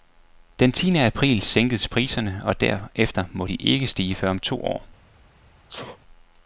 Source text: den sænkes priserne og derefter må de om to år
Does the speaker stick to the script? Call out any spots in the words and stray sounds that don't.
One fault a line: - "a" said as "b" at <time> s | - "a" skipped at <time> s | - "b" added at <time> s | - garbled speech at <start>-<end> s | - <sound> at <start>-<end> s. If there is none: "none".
- "tiende april" added at 0.7 s
- "ikke stige før" added at 3.6 s
- sneeze at 5.7-6.0 s